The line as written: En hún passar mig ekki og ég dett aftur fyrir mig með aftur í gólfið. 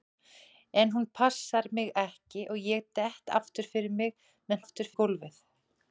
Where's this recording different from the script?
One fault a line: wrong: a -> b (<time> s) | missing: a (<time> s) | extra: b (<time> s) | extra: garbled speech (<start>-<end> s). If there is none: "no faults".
no faults